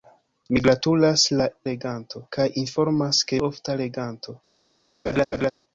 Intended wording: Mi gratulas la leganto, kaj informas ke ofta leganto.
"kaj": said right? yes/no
yes